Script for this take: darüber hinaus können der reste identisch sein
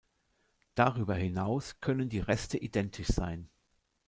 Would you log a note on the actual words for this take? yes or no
yes